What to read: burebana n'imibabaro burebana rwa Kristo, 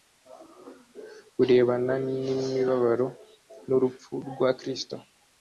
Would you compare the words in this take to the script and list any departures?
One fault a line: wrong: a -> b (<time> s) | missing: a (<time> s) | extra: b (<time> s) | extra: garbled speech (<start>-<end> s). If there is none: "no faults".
wrong: burebana -> n'urupfu (3.7 s)